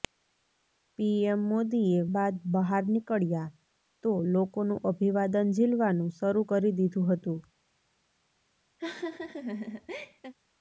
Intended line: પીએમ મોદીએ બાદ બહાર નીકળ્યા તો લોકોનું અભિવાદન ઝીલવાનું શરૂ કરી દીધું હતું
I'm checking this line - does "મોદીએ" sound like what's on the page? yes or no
yes